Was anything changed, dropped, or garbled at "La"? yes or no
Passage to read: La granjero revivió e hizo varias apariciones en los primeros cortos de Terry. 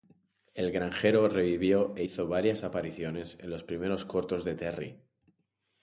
yes